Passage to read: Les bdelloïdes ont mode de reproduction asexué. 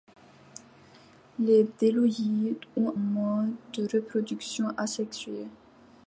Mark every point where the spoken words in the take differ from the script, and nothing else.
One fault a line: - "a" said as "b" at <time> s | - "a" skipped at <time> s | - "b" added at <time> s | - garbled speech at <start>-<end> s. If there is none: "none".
none